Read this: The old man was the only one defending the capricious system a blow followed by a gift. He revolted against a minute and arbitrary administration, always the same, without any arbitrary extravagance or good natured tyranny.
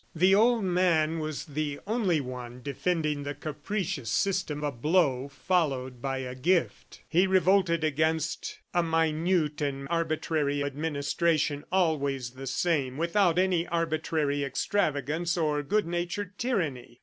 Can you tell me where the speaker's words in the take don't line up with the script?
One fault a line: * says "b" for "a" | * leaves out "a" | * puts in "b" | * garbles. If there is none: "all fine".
all fine